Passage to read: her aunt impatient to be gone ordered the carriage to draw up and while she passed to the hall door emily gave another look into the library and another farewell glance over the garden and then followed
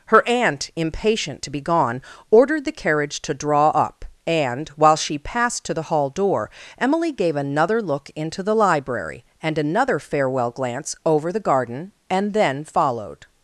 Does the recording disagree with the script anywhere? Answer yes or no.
no